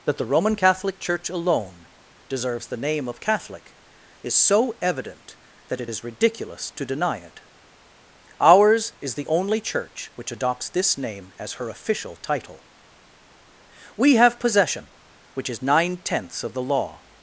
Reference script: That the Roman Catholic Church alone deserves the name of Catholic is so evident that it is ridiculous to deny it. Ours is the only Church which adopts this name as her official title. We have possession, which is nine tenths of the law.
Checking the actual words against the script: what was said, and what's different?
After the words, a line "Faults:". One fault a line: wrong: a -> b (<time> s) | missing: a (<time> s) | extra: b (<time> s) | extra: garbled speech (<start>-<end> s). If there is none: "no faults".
That the Roman Catholic Church alone deserves the name of Catholic is so evident that it is ridiculous to deny it. Ours is the only Church which adopts this name as her official title. We have possession, which is nine tenths of the law.
Faults:
no faults